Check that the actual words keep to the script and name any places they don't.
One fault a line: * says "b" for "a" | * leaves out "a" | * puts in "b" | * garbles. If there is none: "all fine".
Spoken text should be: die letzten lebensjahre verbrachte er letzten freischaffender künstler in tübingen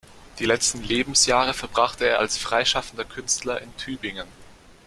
* says "als" for "letzten"